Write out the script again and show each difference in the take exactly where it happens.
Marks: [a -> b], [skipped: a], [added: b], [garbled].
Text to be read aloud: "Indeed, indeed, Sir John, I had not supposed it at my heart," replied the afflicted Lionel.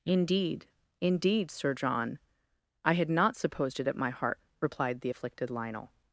"Indeed, indeed, Sir John, I had not supposed it at my heart," replied the afflicted Lionel.